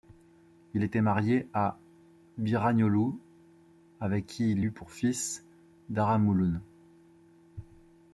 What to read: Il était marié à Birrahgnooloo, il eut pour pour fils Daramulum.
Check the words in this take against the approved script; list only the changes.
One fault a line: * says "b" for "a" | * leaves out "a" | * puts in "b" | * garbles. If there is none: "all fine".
* puts in "avec qui"
* leaves out "pour"